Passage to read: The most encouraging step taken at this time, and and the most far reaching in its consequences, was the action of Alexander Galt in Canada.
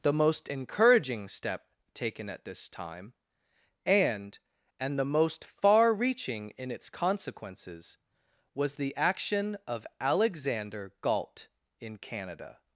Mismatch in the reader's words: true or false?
false